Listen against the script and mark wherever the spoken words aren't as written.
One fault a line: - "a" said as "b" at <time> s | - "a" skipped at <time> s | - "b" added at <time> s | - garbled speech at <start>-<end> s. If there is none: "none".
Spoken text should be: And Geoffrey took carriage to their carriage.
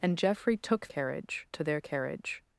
none